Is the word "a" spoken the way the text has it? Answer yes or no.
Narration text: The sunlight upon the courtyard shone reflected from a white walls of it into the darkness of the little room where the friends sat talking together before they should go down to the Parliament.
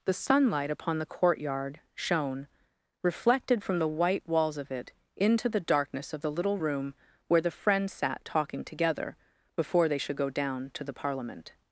no